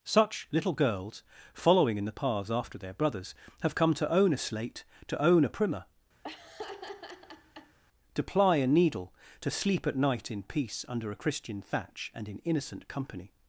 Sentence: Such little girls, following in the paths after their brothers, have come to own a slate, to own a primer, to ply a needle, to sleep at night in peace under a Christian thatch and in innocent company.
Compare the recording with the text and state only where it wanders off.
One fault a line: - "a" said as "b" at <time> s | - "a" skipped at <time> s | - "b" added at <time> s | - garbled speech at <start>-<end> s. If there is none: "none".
none